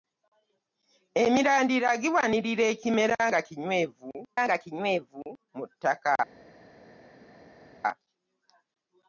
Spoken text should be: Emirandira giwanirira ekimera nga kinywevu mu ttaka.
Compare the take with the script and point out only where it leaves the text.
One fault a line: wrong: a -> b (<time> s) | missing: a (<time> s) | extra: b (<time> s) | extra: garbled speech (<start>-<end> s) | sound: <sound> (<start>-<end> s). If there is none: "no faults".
extra: nga kinywevu (4.4 s)